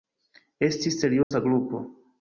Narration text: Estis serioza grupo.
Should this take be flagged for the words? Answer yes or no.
no